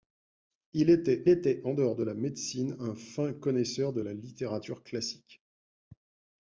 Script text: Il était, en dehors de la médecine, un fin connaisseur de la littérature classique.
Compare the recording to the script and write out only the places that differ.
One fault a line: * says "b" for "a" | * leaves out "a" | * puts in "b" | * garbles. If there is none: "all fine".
* puts in "était"